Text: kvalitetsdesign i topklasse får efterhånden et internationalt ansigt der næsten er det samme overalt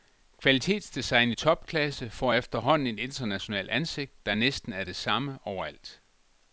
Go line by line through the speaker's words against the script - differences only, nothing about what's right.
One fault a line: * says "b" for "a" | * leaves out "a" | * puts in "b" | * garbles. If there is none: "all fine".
all fine